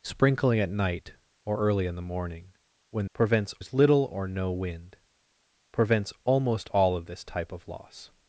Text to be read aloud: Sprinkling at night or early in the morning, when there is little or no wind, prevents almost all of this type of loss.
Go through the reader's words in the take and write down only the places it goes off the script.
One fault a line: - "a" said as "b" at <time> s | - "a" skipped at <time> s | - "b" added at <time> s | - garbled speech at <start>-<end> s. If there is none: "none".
- "there" said as "prevents" at 3.1 s